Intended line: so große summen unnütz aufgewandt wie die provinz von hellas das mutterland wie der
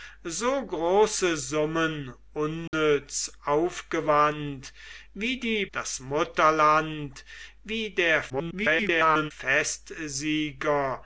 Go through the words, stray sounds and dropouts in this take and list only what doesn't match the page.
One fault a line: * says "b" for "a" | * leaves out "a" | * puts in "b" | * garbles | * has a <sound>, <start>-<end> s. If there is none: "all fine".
* has a dropout, 2.7-2.7 s
* leaves out "provinz von hellas"
* garbles